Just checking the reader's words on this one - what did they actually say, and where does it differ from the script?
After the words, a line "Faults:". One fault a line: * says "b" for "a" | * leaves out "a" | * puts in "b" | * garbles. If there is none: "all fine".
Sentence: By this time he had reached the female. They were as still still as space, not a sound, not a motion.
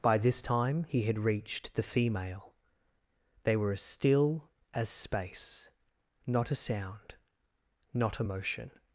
By this time he had reached the female. They were as still as space, not a sound, not a motion.
Faults:
* leaves out "still"